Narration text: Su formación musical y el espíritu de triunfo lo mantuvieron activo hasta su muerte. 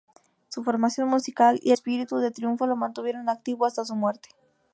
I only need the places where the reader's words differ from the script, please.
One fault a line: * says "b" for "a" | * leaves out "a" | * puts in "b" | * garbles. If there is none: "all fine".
* leaves out "el"